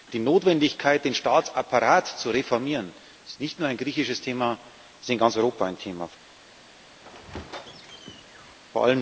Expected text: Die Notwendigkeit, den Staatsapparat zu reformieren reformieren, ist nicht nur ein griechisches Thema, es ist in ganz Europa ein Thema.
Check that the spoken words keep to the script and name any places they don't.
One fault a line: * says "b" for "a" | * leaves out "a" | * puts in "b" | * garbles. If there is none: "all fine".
* leaves out "reformieren"